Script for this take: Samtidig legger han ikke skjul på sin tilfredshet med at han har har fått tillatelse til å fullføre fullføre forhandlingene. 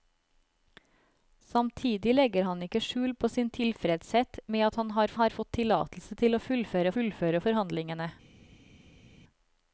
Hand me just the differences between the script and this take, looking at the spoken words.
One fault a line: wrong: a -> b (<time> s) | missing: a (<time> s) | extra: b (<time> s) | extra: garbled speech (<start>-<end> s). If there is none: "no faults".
no faults